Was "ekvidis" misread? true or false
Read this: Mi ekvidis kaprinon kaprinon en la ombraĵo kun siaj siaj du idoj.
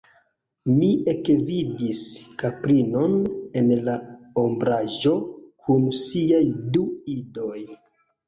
false